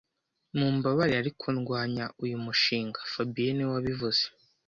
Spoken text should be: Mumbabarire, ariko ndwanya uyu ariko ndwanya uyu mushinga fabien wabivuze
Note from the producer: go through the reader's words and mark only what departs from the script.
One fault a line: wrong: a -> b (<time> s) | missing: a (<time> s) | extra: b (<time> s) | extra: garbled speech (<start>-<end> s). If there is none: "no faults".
missing: ariko ndwanya uyu (2.4 s)
extra: niwe (3.5 s)